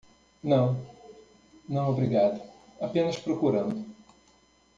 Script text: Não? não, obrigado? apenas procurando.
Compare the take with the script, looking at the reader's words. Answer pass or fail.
pass